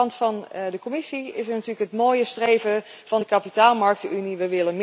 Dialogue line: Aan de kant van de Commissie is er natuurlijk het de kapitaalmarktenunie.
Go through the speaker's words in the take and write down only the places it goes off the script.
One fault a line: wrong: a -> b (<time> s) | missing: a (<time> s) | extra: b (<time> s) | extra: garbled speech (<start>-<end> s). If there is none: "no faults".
extra: mooie streven van (1.9 s)